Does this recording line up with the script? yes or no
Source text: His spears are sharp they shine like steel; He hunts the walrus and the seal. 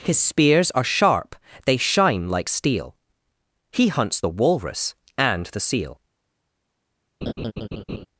yes